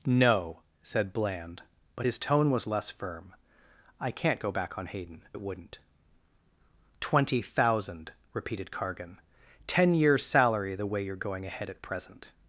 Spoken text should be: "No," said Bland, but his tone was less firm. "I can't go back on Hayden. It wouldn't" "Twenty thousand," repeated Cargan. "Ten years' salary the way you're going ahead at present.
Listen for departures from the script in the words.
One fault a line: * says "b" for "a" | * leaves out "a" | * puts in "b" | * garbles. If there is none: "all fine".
all fine